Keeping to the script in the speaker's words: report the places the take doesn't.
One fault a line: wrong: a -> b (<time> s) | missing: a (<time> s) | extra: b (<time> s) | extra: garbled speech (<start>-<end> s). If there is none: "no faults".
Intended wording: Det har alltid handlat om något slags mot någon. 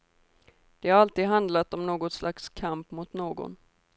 extra: kamp (2.5 s)